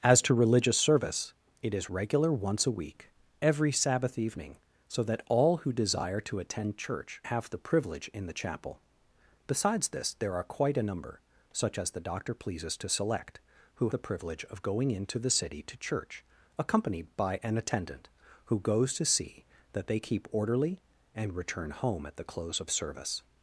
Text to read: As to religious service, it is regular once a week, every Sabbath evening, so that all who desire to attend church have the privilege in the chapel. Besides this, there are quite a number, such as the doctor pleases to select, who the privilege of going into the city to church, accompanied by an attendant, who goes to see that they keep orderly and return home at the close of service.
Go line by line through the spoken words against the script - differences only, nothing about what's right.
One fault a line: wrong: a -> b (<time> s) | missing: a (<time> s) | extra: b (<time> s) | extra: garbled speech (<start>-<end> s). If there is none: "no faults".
no faults